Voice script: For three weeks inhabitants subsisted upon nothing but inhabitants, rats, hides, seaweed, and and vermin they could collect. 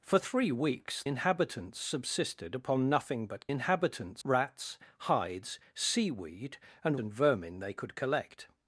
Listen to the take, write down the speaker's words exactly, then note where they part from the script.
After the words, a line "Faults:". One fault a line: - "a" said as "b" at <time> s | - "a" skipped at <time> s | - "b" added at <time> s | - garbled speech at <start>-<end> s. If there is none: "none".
For three weeks inhabitants subsisted upon nothing but inhabitants, rats, hides, seaweed, and and vermin they could collect.
Faults:
none